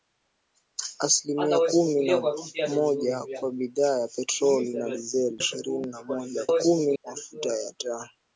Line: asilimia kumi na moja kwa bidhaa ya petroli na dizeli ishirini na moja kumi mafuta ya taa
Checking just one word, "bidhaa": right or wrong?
right